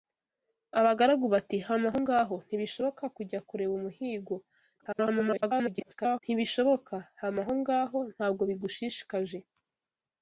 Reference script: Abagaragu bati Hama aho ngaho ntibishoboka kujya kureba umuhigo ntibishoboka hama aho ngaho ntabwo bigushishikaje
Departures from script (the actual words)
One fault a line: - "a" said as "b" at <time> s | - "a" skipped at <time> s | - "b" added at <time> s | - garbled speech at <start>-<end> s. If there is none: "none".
- garbled speech at 4.8-6.2 s